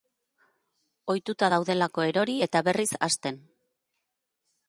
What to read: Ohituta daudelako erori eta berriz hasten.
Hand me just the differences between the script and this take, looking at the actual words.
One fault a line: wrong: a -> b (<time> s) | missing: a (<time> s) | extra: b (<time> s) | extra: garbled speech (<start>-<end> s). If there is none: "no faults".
no faults